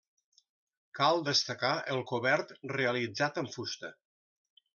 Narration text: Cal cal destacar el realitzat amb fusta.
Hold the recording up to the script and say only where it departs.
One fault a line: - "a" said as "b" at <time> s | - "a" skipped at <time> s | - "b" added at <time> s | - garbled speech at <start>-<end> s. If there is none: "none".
- "cal" skipped at 1.2 s
- "cobert" added at 2.1 s